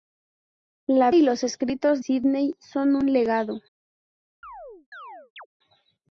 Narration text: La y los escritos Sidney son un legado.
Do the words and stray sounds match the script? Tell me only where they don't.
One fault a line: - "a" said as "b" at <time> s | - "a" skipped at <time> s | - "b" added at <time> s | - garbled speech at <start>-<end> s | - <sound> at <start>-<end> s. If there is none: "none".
- chirp at 4.4-5.5 s